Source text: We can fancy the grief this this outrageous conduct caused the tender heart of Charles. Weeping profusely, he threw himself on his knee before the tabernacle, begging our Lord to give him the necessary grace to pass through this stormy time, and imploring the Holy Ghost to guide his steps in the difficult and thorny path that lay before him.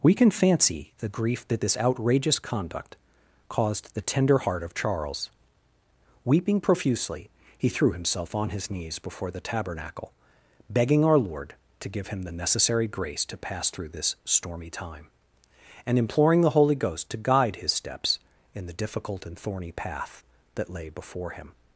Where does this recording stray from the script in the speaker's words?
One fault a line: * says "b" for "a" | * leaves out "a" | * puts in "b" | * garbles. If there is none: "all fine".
* says "that" for "this"
* says "knees" for "knee"